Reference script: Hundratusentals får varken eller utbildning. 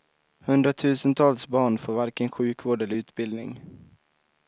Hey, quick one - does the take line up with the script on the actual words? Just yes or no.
no